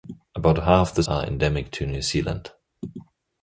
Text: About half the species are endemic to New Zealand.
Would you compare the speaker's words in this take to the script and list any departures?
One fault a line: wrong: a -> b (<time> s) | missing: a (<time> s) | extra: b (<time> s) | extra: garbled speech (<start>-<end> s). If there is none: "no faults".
missing: species (1.0 s)